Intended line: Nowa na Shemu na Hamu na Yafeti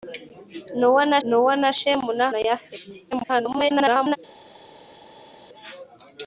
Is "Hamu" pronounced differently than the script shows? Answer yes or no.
yes